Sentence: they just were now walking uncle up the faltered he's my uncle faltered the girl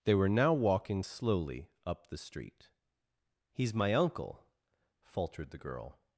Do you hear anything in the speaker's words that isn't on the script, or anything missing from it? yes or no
yes